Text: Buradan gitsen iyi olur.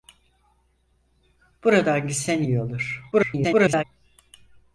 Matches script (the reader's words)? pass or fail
fail